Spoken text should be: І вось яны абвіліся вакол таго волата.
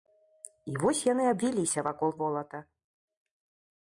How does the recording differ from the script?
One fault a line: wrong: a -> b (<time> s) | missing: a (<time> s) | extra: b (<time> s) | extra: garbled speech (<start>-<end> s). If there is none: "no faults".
missing: таго (2.2 s)